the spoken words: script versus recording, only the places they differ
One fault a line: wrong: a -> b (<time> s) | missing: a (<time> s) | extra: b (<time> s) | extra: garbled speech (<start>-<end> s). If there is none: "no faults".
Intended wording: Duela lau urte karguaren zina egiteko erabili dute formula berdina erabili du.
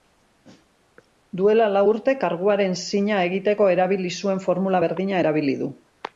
wrong: dute -> zuen (4.2 s)